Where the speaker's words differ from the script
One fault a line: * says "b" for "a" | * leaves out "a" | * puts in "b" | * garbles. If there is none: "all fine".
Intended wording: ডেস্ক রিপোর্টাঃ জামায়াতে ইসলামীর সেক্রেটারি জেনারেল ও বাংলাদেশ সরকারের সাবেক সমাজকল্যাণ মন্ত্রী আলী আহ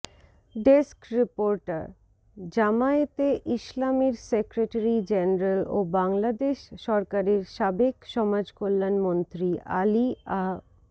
all fine